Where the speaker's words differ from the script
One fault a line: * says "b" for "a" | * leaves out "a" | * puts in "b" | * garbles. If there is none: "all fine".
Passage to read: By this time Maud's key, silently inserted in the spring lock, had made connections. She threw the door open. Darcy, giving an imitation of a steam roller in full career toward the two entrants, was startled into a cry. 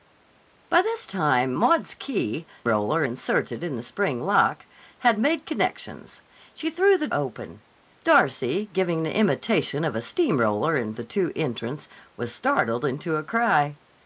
* says "roller" for "silently"
* leaves out "door"
* leaves out "full career toward"